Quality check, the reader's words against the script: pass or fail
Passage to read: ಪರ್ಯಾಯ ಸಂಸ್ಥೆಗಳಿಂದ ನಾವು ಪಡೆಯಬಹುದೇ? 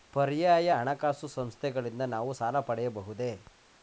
fail